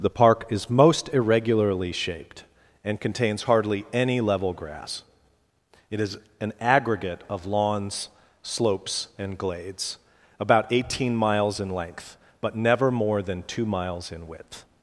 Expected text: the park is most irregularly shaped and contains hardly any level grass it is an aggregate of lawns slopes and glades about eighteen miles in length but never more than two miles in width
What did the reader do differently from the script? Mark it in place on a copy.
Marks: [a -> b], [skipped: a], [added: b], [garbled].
the park is most irregularly shaped and contains hardly any level grass it is an aggregate of lawns slopes and glades about eighteen miles in length but never more than two miles in width